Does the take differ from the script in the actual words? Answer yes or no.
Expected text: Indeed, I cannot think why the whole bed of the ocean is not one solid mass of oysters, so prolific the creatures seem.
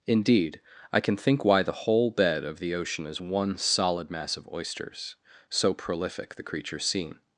yes